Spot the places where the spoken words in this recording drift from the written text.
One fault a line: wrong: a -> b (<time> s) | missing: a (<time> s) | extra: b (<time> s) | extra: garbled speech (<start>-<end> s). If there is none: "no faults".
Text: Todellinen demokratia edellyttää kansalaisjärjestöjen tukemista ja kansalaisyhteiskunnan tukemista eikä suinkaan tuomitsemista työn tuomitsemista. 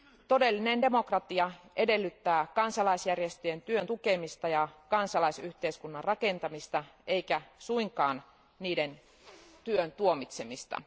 extra: työn (3.6 s)
wrong: tukemista -> rakentamista (6.0 s)
wrong: tuomitsemista -> niiden (8.6 s)